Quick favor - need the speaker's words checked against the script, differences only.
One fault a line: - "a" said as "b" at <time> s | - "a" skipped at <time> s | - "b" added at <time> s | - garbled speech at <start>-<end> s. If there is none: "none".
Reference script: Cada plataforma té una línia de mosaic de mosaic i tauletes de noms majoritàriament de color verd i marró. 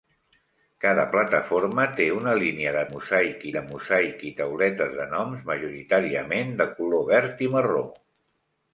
none